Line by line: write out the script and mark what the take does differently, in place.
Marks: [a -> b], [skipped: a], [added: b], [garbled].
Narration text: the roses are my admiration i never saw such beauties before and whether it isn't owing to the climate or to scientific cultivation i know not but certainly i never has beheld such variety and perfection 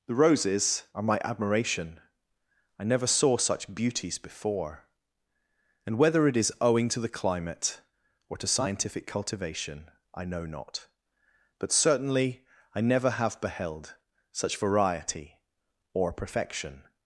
the roses are my admiration i never saw such beauties before and whether it [isn't -> is] owing to the climate or to scientific cultivation i know not but certainly i never [has -> have] beheld such variety [and -> or] perfection